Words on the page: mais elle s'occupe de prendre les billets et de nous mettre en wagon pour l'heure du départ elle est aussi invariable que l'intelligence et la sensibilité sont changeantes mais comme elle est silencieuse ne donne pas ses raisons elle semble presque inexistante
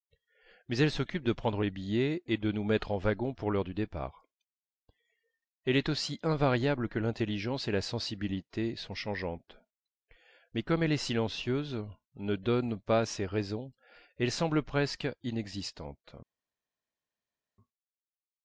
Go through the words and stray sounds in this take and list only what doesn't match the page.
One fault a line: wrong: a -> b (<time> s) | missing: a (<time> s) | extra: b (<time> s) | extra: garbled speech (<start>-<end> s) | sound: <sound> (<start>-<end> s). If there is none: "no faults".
no faults